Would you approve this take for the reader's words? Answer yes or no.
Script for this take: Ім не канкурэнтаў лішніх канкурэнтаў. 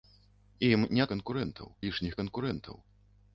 yes